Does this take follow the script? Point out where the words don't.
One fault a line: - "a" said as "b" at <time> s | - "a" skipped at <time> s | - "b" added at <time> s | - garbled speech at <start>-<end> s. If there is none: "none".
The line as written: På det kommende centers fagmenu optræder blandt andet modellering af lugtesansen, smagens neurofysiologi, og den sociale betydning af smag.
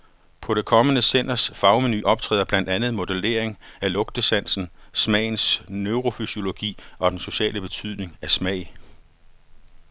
none